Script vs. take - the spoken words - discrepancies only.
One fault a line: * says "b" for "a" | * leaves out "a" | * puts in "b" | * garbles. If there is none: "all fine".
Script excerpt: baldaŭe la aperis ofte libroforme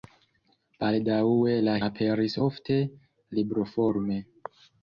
all fine